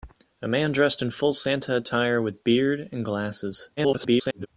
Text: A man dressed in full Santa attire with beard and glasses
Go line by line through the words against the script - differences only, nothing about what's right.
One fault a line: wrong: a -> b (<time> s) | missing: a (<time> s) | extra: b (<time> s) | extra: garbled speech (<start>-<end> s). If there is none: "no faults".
extra: garbled speech (3.8-4.5 s)